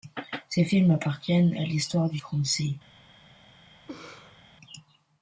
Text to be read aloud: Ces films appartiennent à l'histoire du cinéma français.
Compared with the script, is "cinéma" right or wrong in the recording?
wrong